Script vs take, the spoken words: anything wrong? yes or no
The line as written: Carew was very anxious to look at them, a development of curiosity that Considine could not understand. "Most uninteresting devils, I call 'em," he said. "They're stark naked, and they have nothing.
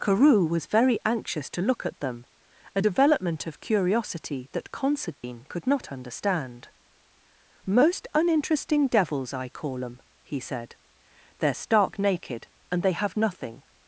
no